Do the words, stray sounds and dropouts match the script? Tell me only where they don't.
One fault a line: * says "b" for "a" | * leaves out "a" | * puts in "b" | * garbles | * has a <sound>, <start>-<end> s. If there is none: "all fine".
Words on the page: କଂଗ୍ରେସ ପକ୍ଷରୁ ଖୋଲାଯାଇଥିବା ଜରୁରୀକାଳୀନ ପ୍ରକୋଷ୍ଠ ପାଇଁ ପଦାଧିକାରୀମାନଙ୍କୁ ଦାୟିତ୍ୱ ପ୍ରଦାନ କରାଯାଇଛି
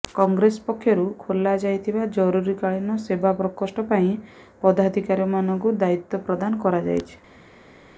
* puts in "ସେବା"